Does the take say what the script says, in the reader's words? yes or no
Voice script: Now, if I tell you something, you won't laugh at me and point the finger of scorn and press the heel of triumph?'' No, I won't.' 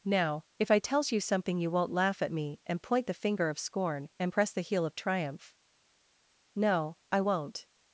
no